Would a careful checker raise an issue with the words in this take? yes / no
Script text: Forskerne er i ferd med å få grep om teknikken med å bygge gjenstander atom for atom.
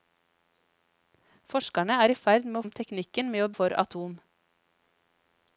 yes